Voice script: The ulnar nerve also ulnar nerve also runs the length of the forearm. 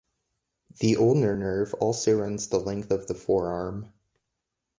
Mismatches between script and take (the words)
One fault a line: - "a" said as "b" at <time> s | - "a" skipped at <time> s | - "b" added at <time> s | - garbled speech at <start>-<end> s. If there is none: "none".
- "ulnar nerve also" skipped at 2.2 s